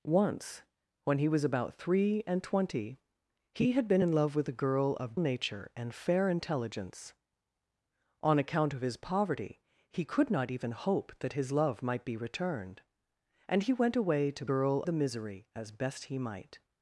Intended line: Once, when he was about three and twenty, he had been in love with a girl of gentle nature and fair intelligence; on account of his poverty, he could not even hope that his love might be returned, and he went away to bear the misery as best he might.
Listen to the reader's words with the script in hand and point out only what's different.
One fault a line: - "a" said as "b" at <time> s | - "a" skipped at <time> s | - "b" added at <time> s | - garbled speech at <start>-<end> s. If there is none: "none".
- "gentle" skipped at 5.2 s
- "bear" said as "girl" at 14.5 s